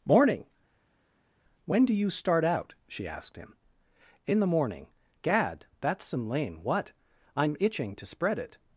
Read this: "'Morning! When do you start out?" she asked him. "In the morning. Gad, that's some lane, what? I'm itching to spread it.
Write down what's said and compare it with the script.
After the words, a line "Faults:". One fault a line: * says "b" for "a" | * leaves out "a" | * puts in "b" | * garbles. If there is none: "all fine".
"'Morning! When do you start out?" she asked him. "In the morning. Gad, that's some lane, what? I'm itching to spread it.
Faults:
all fine